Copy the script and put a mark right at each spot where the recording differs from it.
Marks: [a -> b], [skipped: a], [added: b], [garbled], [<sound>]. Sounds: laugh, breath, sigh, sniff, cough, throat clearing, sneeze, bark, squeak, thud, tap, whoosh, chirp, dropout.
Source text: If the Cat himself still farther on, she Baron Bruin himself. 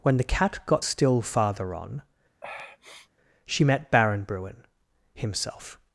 [If -> When] the Cat [himself -> got] still farther on, [sniff] she [added: met] Baron Bruin himself.